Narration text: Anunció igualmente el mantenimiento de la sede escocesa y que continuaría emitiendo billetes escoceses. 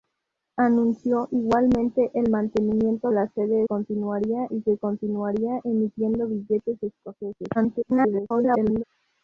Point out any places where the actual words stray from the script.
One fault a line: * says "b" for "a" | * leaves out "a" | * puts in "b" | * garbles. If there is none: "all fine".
* leaves out "de"
* says "continuaría" for "escocesa"
* garbles